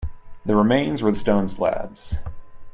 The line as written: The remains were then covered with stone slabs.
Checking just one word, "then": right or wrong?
wrong